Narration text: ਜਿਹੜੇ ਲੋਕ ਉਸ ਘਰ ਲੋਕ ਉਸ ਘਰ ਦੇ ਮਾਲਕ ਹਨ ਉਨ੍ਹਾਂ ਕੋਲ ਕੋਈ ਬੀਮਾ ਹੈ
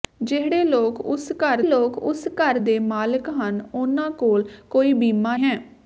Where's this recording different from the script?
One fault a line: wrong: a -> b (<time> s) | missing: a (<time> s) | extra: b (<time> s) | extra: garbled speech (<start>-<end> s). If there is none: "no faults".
no faults